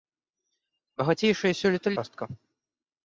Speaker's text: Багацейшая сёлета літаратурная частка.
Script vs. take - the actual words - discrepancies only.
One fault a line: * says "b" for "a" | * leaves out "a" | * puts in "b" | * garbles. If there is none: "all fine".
* leaves out "літаратурная"